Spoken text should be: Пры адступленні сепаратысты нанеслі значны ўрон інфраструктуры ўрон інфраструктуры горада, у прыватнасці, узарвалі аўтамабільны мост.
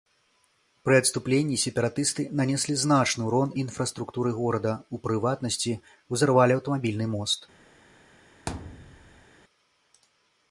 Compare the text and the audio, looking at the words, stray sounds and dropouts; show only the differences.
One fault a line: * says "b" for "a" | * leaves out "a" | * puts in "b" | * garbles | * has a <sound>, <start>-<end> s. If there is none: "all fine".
* leaves out "ўрон інфраструктуры"
* has a thud, 8.5-9.3 s